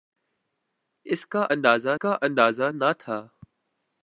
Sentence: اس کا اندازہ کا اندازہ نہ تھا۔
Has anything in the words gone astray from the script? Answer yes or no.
no